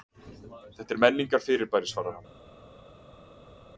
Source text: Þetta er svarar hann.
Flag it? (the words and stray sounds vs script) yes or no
yes